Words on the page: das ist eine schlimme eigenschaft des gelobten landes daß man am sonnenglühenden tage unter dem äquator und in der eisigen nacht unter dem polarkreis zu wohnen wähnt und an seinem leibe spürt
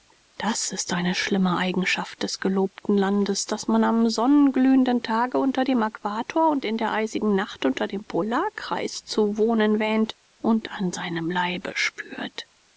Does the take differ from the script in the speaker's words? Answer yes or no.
no